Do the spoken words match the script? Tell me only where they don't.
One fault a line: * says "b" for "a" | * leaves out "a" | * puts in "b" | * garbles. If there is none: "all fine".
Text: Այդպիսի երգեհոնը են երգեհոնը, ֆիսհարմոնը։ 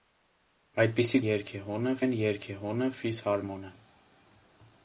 all fine